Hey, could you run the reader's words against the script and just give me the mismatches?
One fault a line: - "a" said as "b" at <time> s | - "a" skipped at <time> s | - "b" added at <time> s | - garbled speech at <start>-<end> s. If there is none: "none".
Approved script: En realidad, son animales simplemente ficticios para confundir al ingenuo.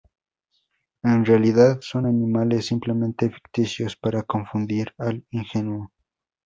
none